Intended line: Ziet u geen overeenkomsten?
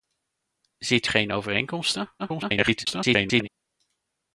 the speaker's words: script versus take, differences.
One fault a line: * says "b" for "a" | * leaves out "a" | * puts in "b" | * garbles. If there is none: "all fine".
* leaves out "u"
* garbles